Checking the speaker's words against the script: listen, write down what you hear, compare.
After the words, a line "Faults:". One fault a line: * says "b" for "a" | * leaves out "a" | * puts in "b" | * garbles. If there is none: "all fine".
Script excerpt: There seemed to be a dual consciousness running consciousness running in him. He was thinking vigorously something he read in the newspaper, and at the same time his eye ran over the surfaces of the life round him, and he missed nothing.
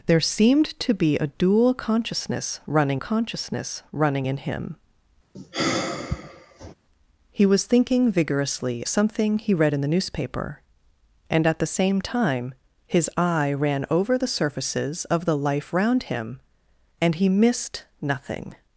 There seemed to be a dual consciousness running consciousness running in him. He was thinking vigorously something he read in the newspaper, and at the same time his eye ran over the surfaces of the life round him, and he missed nothing.
Faults:
all fine